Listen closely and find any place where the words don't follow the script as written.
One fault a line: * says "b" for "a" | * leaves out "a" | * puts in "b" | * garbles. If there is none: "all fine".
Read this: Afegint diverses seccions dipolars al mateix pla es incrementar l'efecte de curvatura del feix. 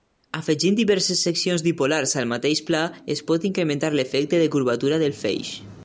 * puts in "pot"